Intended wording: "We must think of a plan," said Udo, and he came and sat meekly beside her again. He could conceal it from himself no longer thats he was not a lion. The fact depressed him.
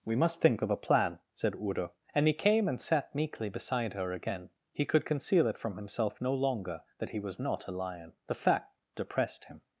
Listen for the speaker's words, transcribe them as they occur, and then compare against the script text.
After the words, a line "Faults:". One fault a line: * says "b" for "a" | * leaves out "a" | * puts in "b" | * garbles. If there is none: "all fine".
"We must think of a plan," said Udo, and he came and sat meekly beside her again. He could conceal it from himself no longer that he was not a lion. The fact depressed him.
Faults:
* says "that" for "thats"